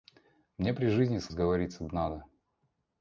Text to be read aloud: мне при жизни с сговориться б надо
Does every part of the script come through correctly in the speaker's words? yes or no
yes